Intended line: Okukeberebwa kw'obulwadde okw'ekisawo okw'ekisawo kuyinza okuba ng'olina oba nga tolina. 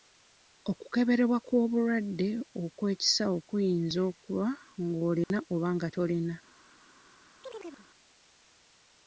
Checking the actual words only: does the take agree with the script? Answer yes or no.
no